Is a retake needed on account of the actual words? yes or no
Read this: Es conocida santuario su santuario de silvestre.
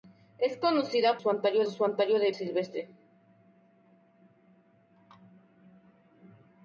no